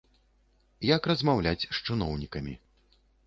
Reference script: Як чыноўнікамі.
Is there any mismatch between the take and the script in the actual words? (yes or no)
yes